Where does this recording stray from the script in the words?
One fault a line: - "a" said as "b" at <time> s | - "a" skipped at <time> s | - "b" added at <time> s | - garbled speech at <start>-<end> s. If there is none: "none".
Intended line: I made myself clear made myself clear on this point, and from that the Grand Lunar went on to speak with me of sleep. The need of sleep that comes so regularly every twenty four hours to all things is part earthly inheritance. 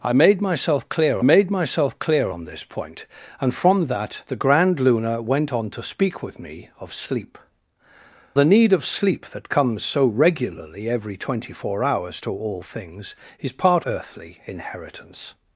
none